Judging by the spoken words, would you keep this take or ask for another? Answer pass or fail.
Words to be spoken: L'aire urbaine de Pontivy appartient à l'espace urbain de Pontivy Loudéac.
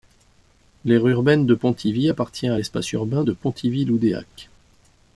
pass